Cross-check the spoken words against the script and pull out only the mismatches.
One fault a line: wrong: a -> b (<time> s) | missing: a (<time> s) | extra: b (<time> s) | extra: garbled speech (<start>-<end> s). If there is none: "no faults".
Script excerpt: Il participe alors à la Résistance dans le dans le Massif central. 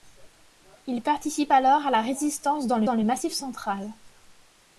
no faults